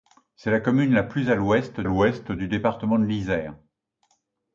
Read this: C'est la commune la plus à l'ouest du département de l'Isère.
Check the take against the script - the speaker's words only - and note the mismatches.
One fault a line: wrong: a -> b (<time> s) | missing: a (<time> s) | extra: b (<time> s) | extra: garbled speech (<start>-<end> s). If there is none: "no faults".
extra: l'ouest (1.8 s)